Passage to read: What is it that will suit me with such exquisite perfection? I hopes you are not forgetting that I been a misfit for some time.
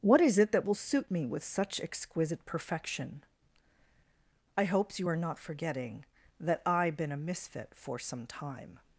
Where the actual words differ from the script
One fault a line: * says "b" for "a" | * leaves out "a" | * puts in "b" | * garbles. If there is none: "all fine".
all fine